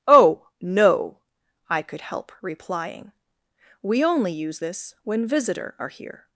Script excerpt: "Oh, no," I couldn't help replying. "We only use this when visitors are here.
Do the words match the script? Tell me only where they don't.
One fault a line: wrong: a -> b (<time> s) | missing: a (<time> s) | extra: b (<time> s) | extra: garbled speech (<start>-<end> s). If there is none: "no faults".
wrong: couldn't -> could (1.8 s)
wrong: visitors -> visitor (5.3 s)